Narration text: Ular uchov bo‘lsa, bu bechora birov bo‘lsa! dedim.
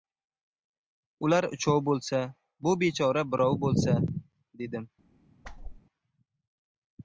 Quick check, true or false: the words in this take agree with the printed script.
true